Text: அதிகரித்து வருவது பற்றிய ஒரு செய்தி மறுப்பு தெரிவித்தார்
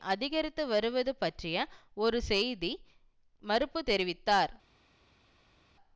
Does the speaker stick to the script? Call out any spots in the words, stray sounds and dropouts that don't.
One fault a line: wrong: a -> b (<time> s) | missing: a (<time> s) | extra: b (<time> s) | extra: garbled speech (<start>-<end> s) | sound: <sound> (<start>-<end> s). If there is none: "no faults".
no faults